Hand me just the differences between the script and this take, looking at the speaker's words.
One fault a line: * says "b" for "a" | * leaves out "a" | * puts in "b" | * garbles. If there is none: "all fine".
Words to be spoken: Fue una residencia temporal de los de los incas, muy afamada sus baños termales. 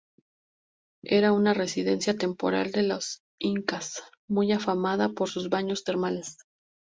* says "Era" for "Fue"
* leaves out "de los"
* puts in "por"